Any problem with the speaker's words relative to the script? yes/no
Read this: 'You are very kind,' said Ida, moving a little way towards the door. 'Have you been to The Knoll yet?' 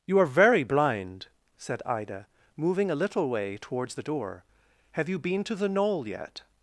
yes